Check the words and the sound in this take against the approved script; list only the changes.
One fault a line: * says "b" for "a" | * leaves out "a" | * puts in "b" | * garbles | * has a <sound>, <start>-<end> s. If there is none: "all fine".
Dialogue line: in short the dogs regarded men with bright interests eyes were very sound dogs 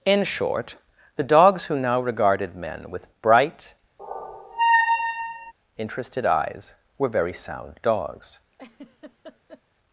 * puts in "who now"
* has a squeak, 4.0-5.5 s
* says "interested" for "interests"
* has a laugh, 8.5-9.6 s